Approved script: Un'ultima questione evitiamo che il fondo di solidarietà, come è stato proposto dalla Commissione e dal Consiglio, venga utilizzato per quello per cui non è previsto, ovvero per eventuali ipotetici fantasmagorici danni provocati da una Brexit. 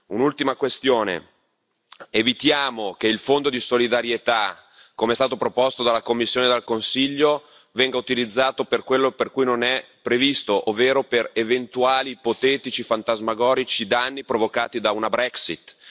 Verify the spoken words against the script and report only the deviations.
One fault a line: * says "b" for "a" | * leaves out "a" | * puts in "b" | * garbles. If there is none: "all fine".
all fine